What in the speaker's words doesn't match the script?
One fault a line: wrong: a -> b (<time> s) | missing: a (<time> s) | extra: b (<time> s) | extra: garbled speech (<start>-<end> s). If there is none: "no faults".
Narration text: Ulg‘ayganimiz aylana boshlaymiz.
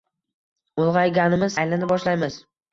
no faults